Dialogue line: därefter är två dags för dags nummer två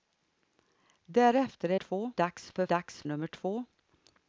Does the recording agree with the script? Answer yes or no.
yes